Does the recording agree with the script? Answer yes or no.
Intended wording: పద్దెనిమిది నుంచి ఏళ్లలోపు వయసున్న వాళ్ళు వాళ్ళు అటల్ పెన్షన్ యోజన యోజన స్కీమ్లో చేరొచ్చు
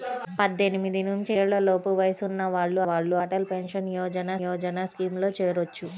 yes